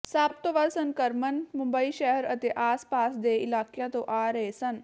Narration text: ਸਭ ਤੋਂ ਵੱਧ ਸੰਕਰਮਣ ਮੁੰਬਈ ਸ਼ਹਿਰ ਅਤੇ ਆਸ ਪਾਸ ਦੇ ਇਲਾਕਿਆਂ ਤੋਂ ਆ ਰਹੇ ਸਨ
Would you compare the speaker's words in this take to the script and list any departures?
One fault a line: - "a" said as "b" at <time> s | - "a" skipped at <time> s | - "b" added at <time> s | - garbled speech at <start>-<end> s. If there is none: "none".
none